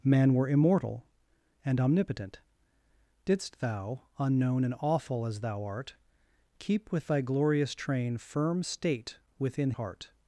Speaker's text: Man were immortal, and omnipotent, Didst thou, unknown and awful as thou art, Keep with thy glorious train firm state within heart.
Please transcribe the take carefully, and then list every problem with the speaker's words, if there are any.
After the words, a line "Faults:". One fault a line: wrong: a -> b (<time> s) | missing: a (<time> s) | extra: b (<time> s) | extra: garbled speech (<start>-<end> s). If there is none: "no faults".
Man were immortal, and omnipotent, Didst thou, unknown and awful as thou art, Keep with thy glorious train firm state within heart.
Faults:
no faults